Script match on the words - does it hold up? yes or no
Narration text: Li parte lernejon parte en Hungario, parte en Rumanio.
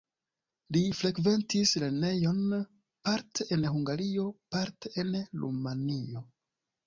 no